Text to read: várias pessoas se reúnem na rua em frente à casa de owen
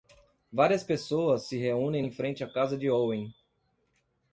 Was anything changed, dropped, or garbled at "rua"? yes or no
yes